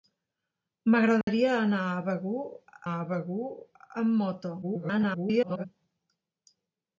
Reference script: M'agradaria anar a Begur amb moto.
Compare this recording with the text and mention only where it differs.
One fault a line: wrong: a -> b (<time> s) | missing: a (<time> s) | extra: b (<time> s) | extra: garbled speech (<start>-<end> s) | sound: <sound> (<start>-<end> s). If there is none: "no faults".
sound: dropout (1.2-1.3 s)
extra: a Begur (2.9 s)
extra: garbled speech (4.6-5.6 s)